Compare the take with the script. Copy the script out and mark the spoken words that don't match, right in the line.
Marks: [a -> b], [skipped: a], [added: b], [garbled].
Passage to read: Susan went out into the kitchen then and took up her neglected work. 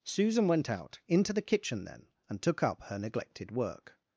Susan went out into the kitchen then and took up her neglected work.